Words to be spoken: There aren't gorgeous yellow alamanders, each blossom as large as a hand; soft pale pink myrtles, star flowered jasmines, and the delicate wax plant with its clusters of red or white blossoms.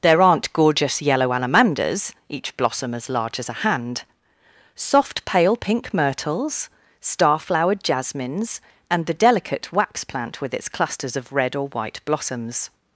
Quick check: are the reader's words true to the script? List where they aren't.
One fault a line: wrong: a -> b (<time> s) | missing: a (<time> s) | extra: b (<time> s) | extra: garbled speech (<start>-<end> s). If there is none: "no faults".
no faults